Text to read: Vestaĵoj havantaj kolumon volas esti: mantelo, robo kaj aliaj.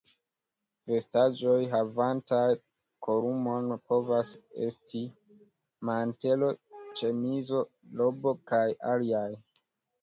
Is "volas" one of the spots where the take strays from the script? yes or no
yes